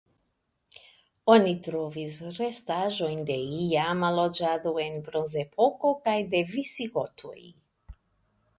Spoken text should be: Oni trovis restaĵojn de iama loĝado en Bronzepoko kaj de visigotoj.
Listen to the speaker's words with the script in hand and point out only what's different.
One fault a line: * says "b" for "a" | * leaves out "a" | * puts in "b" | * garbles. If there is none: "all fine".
all fine